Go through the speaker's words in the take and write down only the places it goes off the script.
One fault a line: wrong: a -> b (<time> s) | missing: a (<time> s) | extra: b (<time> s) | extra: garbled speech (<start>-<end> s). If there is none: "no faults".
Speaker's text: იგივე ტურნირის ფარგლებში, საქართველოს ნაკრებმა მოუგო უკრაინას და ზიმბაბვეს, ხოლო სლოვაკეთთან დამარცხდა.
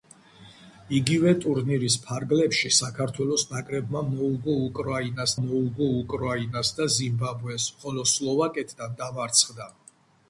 extra: მოუგო უკრაინას (5.4 s)